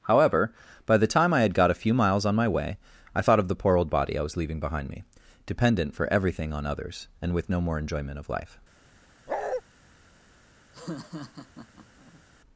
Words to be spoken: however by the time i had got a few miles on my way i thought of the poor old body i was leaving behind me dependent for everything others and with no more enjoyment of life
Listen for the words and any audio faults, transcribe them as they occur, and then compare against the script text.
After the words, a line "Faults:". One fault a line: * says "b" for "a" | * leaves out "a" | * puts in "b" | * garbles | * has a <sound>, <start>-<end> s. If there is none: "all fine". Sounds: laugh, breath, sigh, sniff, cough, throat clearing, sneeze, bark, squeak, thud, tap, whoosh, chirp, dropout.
however by the time i had got a few miles on my way i thought of the poor old body i was leaving behind me dependent for everything on others and with no more enjoyment of life
Faults:
* puts in "on"
* has a bark, 9.3-9.6 s
* has a laugh, 10.7-12.2 s